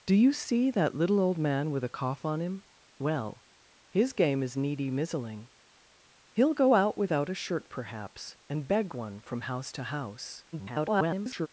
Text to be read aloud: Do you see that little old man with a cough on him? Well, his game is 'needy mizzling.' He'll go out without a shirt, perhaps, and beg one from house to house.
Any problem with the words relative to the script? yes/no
yes